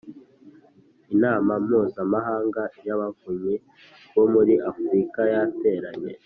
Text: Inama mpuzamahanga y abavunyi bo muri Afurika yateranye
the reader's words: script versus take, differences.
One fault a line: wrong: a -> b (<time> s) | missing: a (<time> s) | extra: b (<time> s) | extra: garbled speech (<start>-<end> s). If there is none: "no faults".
no faults